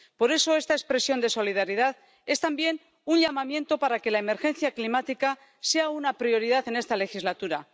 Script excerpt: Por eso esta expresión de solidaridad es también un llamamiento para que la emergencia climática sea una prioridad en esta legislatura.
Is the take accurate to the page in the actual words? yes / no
yes